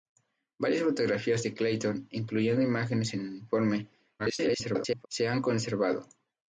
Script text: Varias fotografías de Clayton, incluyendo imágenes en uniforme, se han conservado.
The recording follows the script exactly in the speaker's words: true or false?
false